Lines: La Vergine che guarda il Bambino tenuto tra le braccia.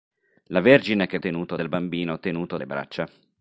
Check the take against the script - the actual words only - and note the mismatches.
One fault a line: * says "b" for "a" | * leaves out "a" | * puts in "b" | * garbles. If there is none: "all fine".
* says "tenuto" for "guarda"
* leaves out "tra"